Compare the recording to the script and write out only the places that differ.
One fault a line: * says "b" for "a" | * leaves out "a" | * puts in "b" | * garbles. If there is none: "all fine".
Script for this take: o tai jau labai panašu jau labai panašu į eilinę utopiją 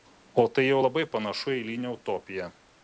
* leaves out "jau labai panašu"